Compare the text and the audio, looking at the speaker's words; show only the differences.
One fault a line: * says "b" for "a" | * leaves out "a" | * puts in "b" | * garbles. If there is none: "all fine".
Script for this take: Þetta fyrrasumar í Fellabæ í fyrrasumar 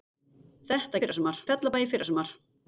all fine